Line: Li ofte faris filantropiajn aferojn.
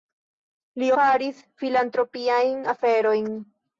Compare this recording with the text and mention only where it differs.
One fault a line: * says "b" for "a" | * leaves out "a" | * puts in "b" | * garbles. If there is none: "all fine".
* leaves out "ofte"